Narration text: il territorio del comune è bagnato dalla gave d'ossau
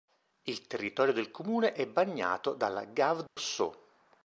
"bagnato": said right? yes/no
yes